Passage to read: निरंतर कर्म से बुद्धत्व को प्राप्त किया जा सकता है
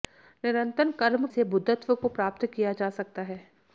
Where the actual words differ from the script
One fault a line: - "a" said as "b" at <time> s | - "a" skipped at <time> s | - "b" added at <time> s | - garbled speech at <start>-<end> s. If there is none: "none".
none